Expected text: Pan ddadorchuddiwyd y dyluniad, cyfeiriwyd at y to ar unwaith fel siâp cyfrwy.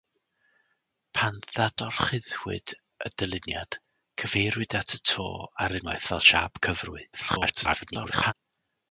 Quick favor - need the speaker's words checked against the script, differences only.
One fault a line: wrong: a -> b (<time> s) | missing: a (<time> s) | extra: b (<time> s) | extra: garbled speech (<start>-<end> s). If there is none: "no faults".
extra: garbled speech (7.1-8.3 s)